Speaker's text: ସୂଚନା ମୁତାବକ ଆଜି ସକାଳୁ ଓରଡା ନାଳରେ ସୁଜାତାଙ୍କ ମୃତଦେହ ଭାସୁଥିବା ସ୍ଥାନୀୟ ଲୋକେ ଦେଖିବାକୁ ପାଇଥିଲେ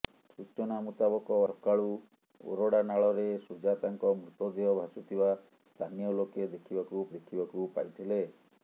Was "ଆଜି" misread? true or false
true